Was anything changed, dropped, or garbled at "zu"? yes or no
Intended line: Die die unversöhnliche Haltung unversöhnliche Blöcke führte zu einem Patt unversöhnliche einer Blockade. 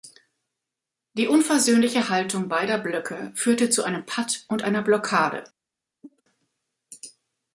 no